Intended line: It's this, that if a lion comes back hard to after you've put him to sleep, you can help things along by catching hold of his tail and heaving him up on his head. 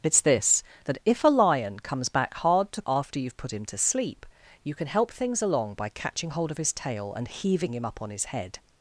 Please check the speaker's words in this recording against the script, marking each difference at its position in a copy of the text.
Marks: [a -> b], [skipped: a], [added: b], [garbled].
It's this, that if a lion comes back hard to after you've put him to sleep, you can help things along by catching hold of his tail and heaving him up on his head.